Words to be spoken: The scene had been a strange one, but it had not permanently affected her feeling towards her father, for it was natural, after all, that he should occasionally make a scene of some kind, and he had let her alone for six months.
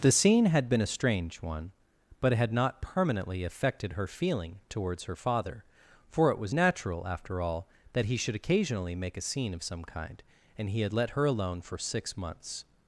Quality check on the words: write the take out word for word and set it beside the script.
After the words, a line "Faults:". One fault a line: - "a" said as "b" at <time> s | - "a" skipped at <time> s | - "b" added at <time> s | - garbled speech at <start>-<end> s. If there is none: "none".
The scene had been a strange one, but it had not permanently affected her feeling towards her father, for it was natural, after all, that he should occasionally make a scene of some kind, and he had let her alone for six months.
Faults:
none